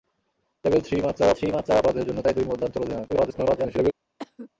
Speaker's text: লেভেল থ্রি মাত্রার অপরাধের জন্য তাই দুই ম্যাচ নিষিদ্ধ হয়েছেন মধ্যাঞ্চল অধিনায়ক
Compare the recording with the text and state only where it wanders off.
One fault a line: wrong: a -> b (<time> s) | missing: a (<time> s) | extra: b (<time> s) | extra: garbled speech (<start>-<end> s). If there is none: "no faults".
extra: থ্রি মাত্রার (1.4 s)
missing: ম্যাচ নিষিদ্ধ হয়েছেন (2.5 s)
extra: garbled speech (3.1-3.9 s)